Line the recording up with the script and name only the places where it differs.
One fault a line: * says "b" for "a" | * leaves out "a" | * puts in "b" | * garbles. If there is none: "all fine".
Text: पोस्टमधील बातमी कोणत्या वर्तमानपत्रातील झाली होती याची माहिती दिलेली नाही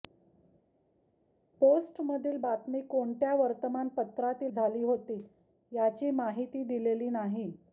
all fine